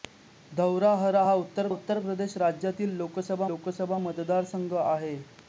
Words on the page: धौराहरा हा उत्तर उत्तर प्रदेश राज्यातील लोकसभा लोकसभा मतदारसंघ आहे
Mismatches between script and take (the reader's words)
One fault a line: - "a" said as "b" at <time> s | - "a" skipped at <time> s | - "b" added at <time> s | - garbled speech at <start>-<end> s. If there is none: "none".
none